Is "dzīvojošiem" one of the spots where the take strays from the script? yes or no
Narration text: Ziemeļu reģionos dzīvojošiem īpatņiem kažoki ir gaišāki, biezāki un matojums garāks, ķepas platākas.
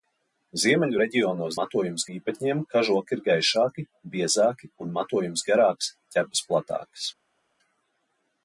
yes